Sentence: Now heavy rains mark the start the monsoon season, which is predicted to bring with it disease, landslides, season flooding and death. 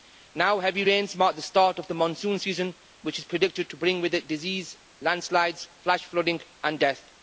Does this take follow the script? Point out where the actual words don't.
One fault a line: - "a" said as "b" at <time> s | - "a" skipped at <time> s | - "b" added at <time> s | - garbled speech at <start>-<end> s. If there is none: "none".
- "of" added at 1.8 s
- "season" said as "flash" at 5.8 s